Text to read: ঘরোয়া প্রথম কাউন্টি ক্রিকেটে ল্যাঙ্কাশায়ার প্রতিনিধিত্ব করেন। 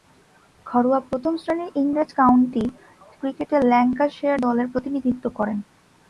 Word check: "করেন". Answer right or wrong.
right